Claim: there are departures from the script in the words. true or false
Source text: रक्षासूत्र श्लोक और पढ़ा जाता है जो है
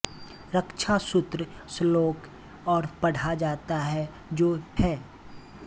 false